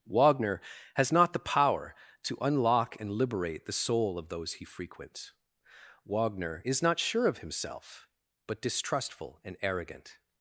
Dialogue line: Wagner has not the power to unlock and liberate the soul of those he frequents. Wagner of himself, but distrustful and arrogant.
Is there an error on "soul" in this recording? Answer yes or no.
no